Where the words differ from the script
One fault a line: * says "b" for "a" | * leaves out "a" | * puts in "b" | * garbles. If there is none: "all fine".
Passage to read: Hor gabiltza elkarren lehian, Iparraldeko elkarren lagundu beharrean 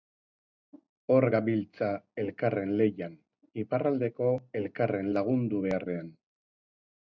all fine